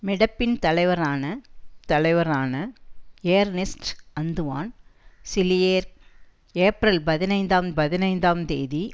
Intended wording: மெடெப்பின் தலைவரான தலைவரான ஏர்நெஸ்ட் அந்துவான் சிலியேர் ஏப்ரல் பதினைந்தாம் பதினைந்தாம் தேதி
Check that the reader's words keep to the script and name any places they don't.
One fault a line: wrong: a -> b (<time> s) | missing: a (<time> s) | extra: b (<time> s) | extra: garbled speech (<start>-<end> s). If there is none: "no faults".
no faults